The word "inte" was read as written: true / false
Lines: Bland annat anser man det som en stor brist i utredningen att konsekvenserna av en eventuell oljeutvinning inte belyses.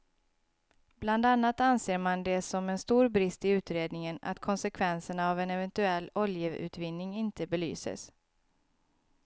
true